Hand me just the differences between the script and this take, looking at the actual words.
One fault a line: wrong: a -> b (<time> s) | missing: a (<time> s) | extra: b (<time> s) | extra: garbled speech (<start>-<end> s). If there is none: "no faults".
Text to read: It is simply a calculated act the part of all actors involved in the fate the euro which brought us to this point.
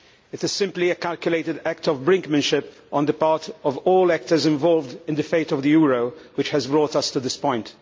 extra: of brinkmanship on (1.9 s)
extra: of (5.5 s)
extra: has (6.5 s)